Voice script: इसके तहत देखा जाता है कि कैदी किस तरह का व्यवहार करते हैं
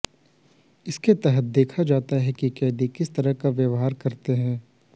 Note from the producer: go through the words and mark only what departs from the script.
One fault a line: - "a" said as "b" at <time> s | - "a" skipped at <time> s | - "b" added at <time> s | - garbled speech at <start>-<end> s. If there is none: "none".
none